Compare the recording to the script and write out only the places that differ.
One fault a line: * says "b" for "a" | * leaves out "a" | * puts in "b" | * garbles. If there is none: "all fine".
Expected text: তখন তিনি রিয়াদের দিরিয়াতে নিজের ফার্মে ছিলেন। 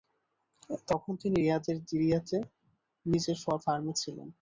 all fine